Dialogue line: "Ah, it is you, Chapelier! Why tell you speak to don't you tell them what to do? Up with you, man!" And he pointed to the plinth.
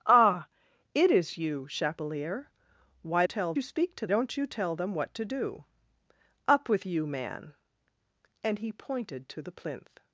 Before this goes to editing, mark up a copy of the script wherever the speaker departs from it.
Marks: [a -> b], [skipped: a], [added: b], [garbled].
"Ah, it is you, Chapelier! Why tell you speak to don't you tell them what to do? Up with you, man!" And he pointed to the plinth.